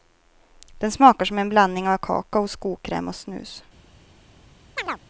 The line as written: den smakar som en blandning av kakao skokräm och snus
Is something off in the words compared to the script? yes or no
no